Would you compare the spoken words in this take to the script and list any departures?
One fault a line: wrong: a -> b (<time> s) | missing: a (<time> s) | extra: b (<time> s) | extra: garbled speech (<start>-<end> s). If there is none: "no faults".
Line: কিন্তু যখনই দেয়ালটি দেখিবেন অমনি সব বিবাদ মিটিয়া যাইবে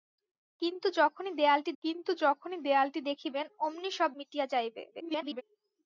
extra: কিন্তু যখনই দেয়ালটি (1.8 s)
missing: বিবাদ (4.1 s)
extra: garbled speech (4.9-5.4 s)